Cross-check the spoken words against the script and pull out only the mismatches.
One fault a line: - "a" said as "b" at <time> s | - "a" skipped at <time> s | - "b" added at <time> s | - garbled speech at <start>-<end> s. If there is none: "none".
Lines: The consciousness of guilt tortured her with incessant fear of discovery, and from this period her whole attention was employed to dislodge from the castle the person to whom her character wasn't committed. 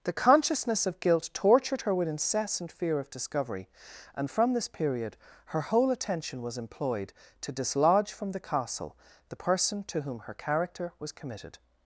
- "wasn't" said as "was" at 11.0 s